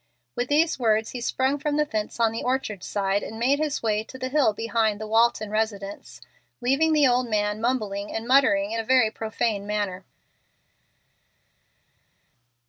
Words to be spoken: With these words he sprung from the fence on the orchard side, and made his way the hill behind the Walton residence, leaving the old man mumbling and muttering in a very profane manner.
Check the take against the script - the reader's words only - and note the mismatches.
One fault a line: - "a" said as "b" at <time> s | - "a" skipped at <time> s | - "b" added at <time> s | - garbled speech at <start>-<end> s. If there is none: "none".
- "to" added at 4.0 s